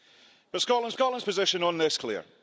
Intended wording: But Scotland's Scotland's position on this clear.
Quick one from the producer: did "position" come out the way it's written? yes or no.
yes